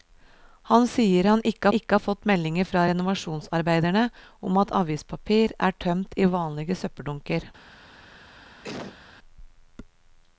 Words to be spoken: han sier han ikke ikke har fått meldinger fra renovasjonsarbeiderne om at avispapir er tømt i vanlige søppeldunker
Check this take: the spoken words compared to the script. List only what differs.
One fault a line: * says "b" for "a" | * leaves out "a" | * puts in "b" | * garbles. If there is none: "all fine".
all fine